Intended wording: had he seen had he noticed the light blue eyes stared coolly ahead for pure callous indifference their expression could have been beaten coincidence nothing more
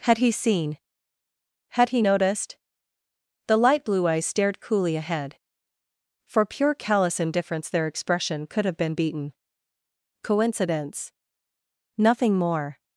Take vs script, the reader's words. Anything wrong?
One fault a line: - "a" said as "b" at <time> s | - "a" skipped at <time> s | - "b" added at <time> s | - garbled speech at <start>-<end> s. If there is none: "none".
none